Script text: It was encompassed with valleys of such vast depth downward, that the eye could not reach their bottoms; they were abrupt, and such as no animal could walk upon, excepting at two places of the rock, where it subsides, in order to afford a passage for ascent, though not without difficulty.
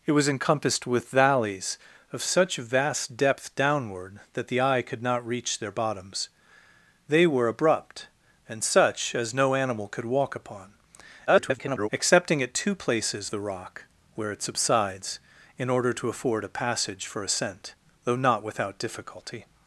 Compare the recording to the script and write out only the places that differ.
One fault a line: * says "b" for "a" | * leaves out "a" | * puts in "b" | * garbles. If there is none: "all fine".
* garbles
* leaves out "of"